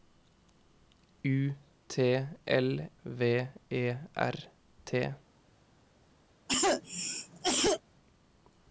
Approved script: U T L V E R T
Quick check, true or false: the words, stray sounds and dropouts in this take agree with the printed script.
false